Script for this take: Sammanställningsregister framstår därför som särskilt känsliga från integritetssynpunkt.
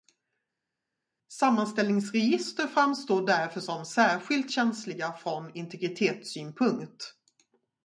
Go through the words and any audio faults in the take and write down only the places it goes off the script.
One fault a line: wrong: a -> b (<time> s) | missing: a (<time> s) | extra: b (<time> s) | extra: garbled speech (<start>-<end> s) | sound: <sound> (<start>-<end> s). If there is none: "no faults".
no faults